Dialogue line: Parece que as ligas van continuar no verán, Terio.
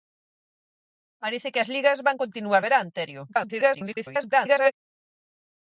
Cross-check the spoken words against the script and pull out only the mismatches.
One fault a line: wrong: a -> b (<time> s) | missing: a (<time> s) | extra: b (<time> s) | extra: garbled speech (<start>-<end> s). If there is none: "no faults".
missing: no (2.6 s)
extra: garbled speech (3.3-4.7 s)